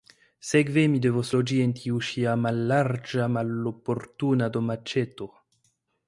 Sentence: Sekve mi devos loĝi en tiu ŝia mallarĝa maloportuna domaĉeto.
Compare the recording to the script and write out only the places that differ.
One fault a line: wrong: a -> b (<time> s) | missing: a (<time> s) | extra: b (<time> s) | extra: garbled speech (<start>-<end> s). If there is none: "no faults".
no faults